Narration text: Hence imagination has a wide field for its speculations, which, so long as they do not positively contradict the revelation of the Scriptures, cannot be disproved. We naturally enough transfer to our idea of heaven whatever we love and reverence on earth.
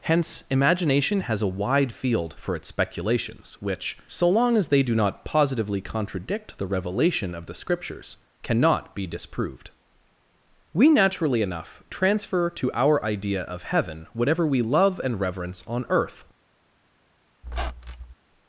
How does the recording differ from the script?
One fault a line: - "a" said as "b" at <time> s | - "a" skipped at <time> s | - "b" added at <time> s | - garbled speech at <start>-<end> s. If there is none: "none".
none